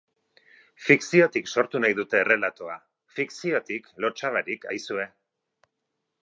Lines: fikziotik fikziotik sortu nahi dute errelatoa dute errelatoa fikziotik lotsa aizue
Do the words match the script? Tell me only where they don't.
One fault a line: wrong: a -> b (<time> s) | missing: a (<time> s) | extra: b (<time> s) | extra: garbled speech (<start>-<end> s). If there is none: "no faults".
missing: fikziotik (1.5 s)
missing: dute errelatoa (2.8 s)
extra: barik (4.4 s)